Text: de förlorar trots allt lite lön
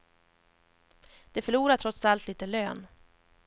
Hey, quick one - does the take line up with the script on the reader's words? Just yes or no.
yes